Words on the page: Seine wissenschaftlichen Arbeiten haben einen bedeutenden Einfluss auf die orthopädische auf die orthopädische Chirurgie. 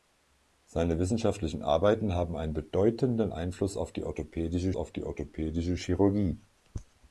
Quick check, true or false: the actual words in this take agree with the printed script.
true